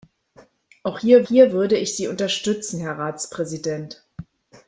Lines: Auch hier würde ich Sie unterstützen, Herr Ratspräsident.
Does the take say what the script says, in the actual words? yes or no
no